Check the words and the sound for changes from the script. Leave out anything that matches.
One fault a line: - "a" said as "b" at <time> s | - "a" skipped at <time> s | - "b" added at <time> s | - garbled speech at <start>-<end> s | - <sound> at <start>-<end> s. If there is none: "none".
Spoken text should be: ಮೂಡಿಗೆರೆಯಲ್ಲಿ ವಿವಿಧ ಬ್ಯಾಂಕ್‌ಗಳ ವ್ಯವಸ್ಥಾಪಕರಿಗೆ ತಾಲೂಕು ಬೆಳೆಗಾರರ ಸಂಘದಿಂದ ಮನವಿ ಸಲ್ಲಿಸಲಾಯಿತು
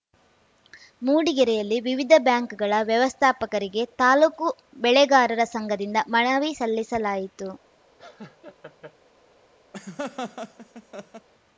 - laugh at 8.0-9.0 s
- laugh at 9.7-11.3 s